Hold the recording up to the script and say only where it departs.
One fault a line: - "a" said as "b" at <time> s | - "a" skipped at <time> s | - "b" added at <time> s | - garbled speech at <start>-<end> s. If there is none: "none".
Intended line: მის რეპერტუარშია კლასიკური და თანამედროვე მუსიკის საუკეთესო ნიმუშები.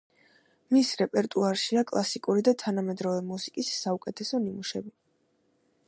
none